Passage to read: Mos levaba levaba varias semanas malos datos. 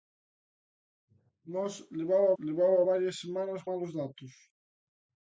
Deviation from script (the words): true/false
false